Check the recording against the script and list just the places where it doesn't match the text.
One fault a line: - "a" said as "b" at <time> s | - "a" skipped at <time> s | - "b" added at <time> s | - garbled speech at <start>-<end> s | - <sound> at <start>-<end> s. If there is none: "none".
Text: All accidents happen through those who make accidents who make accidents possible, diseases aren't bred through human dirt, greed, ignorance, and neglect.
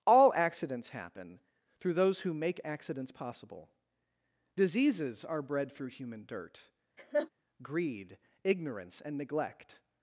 - "who make accidents" skipped at 3.1 s
- "aren't" said as "are" at 5.2 s
- laugh at 7.0-7.3 s